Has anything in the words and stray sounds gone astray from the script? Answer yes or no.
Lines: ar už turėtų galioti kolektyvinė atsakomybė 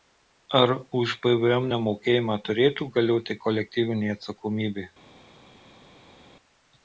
yes